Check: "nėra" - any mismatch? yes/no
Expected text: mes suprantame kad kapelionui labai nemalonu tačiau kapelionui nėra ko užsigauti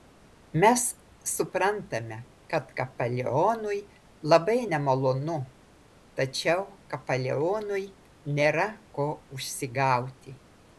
no